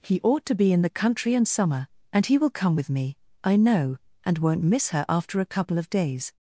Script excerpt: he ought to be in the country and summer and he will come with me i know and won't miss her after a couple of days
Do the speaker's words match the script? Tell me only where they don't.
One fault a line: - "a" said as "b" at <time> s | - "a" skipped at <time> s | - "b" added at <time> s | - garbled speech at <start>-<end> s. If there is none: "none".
none